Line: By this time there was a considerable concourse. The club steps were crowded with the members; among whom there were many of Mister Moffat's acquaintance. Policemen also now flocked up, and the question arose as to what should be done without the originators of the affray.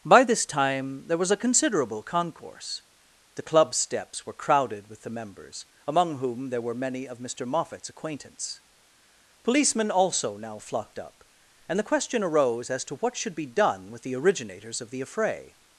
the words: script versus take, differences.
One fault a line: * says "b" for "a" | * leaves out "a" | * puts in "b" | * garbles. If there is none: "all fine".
* says "with" for "without"